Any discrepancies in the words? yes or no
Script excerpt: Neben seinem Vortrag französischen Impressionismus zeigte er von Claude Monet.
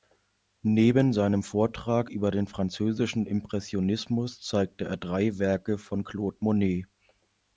yes